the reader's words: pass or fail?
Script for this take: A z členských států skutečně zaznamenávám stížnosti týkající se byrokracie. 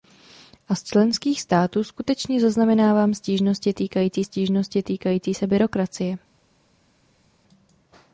fail